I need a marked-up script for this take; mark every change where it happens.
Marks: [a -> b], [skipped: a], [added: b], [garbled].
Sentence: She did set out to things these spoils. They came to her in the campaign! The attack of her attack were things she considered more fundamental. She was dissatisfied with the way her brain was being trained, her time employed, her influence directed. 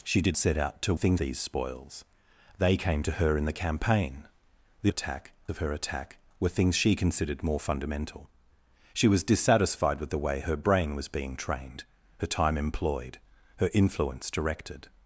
She did set out to things these spoils. They came to her in the campaign! The attack of her attack were things she considered more fundamental. She was dissatisfied with the way her brain was being trained, her time employed, her influence directed.